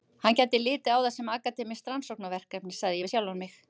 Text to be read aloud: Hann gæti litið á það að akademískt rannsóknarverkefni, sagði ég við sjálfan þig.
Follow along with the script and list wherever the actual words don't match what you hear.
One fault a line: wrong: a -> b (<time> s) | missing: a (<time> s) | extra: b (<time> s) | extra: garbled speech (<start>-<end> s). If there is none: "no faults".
wrong: að -> sem (1.2 s)
wrong: þig -> mig (3.5 s)